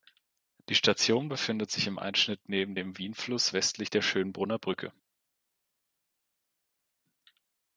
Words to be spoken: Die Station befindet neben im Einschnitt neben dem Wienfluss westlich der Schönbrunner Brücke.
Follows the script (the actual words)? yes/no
no